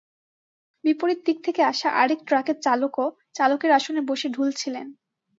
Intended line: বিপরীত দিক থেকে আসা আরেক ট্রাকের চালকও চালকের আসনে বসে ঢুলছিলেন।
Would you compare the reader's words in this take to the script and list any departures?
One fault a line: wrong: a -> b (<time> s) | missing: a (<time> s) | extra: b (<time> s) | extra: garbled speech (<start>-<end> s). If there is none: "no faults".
no faults